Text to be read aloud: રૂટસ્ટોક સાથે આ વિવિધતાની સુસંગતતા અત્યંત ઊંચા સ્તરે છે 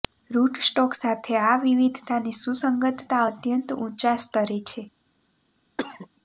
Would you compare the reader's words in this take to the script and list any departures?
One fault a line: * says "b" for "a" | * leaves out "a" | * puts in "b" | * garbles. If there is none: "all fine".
all fine